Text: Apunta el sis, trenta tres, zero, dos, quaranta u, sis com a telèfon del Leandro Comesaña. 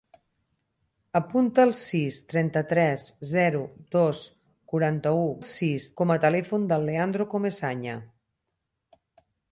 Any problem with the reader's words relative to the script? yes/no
no